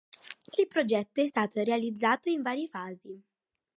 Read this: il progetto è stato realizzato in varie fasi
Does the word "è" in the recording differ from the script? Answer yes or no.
no